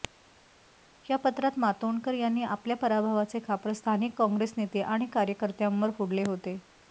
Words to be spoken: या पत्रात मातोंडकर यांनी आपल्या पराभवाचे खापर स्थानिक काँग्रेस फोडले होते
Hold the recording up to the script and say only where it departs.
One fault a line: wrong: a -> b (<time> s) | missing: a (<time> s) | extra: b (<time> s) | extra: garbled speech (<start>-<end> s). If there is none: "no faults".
extra: नेते आणि कार्यकर्त्यांवर (4.6 s)